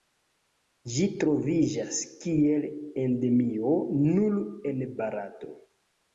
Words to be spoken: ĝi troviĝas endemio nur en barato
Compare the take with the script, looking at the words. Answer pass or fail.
fail